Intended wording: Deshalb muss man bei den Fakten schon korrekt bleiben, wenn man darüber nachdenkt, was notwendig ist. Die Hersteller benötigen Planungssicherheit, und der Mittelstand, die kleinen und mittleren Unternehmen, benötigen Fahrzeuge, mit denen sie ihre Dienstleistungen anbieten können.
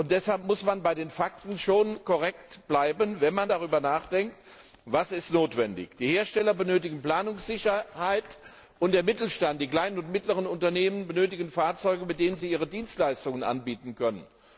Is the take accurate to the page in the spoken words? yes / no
yes